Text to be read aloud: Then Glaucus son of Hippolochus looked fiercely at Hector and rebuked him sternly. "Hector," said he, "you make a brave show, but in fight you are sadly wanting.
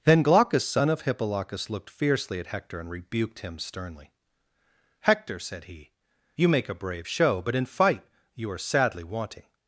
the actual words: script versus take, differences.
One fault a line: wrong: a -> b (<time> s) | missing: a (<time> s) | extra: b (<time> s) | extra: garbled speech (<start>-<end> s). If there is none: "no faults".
no faults